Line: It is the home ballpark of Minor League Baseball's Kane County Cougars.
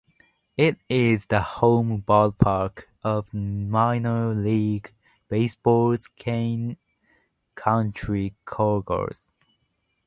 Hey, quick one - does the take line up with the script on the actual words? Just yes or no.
yes